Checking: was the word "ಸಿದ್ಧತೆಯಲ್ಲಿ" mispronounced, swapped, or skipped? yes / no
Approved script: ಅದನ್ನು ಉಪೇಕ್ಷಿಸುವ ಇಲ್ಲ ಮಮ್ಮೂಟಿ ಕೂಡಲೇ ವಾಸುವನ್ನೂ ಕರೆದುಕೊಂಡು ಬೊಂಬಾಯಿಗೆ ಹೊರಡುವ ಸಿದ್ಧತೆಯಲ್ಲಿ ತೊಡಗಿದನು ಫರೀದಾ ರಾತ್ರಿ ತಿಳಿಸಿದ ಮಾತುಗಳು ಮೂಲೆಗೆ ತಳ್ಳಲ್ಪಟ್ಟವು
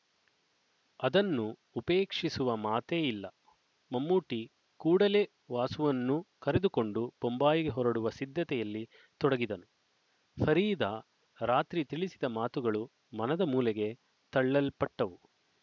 no